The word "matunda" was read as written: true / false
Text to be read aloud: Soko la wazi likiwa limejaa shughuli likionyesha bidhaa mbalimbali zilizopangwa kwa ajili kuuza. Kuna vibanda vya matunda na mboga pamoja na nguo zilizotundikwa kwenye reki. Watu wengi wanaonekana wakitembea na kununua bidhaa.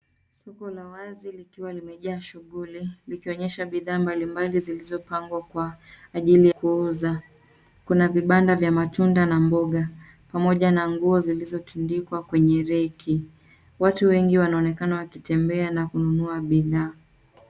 true